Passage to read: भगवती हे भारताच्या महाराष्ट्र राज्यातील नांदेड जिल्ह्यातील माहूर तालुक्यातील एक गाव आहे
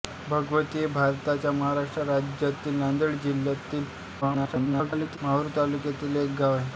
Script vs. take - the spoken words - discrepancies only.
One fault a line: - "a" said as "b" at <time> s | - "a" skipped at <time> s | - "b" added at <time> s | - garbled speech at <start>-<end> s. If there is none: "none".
- garbled speech at 4.2-5.2 s